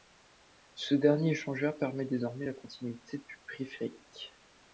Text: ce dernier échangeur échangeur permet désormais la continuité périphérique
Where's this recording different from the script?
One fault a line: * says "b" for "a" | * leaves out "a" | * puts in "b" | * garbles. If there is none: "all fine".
* leaves out "échangeur"
* puts in "du"